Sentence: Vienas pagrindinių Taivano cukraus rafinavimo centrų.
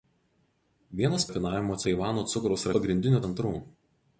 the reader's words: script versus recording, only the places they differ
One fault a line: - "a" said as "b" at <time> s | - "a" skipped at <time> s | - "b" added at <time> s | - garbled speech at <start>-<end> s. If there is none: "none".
- "pagrindinių" said as "rafinavimo" at 1.3 s
- "rafinavimo" said as "pagrindinių" at 2.8 s